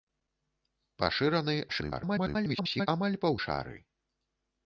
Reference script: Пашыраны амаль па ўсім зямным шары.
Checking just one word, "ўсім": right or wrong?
wrong